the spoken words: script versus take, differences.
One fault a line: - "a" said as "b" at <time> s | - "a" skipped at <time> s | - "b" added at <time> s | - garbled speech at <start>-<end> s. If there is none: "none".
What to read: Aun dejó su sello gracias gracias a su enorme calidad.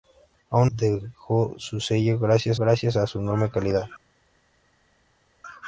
none